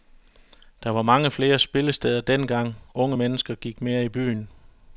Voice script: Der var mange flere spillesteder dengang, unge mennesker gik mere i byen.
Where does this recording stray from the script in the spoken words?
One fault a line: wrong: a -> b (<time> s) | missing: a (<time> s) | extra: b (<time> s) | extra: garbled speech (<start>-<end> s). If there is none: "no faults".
no faults